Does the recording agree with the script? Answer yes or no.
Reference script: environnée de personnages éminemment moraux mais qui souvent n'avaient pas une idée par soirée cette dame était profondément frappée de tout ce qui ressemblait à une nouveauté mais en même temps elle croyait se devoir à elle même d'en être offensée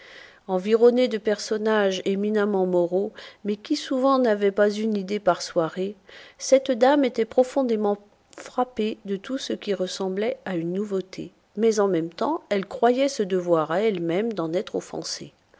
yes